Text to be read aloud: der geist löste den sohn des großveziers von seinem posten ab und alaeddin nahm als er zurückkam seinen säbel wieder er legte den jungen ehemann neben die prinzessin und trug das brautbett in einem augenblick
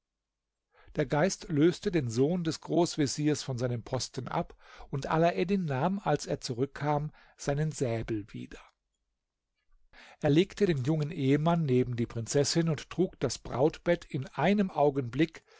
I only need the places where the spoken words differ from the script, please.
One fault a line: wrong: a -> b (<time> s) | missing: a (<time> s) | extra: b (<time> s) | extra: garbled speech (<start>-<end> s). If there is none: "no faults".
no faults